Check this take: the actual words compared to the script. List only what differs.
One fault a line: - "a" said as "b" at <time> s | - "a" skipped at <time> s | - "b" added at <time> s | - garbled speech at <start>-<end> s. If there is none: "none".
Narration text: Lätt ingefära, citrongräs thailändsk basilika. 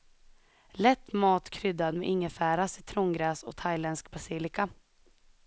- "mat kryddad med" added at 1.1 s
- "och" added at 3.4 s